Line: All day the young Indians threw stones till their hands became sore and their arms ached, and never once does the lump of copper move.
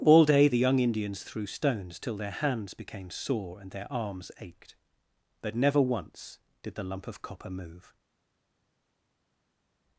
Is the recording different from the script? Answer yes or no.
yes